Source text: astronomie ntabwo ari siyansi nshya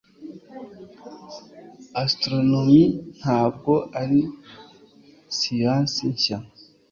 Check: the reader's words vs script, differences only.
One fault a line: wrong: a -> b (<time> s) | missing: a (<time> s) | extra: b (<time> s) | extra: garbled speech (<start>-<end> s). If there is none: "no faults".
no faults